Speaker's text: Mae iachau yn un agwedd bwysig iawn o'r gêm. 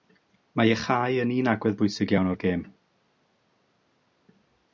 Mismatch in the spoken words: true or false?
false